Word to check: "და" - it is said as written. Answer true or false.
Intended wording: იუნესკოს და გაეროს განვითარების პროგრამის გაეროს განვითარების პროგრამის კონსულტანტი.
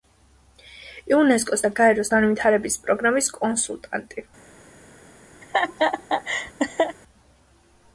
true